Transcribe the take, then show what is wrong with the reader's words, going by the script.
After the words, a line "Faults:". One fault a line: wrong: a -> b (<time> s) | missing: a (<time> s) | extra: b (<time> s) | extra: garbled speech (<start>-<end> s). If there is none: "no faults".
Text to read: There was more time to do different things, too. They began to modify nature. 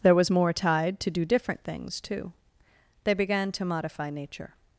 There was more tide to do different things, too. They began to modify nature.
Faults:
wrong: time -> tide (0.5 s)